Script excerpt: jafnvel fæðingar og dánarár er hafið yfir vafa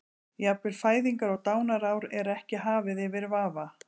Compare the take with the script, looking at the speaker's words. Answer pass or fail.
fail